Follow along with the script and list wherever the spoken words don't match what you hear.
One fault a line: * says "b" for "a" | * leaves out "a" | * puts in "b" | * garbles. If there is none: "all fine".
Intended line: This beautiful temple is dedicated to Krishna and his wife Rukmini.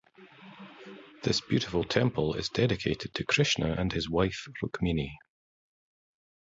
all fine